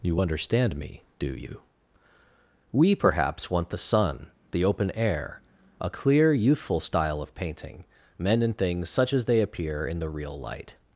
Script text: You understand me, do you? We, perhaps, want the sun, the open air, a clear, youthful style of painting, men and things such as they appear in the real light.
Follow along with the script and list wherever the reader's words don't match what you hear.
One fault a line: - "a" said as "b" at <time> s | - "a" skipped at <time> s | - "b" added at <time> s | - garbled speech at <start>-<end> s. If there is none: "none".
none